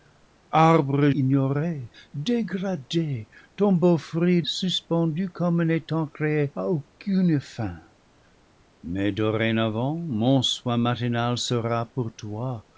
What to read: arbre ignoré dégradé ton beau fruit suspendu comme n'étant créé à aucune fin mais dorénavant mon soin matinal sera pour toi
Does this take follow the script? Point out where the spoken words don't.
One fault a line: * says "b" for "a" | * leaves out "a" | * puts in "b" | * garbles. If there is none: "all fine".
all fine